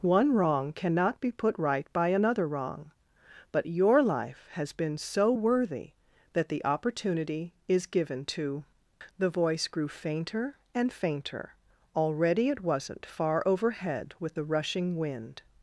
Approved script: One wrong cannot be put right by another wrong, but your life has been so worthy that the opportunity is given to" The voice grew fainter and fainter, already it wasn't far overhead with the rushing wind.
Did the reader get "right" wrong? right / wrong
right